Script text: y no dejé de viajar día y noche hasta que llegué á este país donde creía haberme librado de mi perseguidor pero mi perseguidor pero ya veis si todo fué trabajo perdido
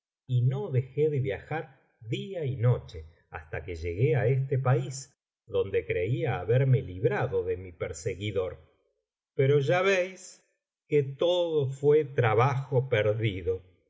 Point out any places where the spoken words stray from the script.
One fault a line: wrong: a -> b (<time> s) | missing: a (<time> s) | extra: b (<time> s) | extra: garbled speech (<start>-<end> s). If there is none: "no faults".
missing: mi perseguidor pero (9.6 s)
wrong: si -> que (10.9 s)